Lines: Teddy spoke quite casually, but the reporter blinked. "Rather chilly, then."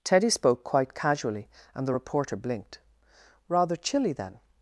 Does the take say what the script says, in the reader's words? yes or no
no